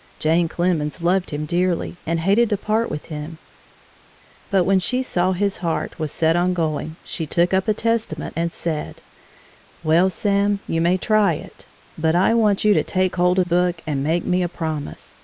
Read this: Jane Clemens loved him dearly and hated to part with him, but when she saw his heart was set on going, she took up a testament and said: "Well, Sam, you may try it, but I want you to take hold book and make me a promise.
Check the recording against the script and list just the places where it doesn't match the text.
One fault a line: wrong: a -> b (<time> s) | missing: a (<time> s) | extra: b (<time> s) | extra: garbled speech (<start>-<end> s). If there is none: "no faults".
no faults